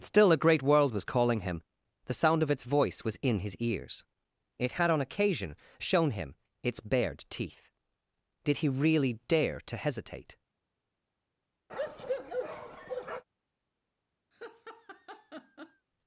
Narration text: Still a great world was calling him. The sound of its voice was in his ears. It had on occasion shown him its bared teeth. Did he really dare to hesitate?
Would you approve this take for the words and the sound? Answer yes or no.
no